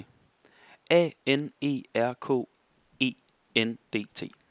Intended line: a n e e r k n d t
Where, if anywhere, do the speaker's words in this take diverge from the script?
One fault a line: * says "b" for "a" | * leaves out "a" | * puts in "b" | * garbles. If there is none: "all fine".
* leaves out "e"
* puts in "e"